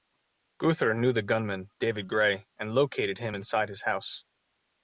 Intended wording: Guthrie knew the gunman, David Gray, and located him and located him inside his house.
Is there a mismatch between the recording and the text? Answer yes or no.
yes